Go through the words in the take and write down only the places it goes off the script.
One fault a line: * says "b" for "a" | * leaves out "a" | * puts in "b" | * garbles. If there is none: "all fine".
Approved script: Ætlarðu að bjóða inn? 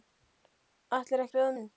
all fine